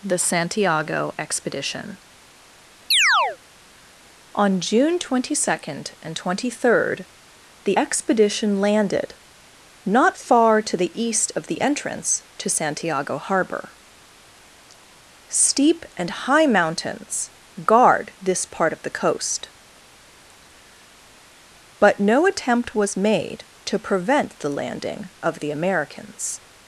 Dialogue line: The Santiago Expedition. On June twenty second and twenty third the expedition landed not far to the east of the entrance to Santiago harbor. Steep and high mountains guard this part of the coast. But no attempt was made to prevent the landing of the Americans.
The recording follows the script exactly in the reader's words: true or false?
true